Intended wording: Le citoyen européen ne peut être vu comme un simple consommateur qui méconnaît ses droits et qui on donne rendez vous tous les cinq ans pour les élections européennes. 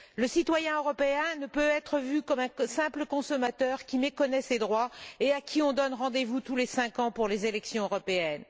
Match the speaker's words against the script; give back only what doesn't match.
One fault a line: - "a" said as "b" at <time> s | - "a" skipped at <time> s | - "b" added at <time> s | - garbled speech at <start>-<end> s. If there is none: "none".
- "à" added at 5.3 s